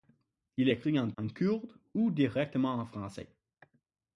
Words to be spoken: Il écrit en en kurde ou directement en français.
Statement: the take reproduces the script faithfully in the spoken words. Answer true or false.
true